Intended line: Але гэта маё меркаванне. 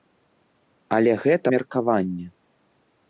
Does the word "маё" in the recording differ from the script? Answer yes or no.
yes